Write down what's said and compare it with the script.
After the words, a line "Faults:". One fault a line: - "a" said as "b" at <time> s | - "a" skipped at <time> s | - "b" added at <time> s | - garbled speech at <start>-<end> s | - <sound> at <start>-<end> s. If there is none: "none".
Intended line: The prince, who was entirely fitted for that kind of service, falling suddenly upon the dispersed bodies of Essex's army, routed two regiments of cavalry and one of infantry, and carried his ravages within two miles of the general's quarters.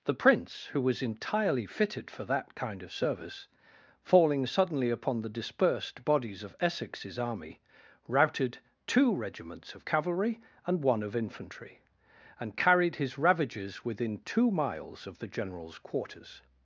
The prince, who was entirely fitted for that kind of service, falling suddenly upon the dispersed bodies of Essex's army, routed two regiments of cavalry and one of infantry, and carried his ravages within two miles of the general's quarters.
Faults:
none